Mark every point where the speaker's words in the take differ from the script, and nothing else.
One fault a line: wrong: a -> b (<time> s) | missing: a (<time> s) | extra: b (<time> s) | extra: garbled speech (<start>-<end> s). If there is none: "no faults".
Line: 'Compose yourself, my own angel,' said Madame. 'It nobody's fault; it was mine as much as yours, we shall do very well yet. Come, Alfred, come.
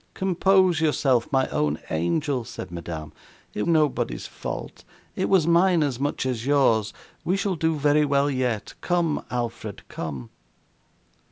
no faults